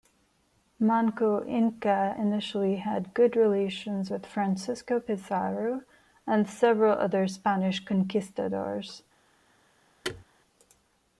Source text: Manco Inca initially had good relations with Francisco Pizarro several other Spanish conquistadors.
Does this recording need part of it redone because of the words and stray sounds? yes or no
yes